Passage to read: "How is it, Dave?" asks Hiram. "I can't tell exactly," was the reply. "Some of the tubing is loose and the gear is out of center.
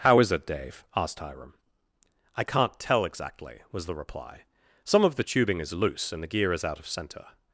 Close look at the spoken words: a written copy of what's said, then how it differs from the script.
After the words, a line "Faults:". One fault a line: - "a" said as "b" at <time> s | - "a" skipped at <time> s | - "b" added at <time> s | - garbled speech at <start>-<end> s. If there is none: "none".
"How is it, Dave?" asked Hiram. "I can't tell exactly," was the reply. "Some of the tubing is loose and the gear is out of center.
Faults:
- "asks" said as "asked" at 1.0 s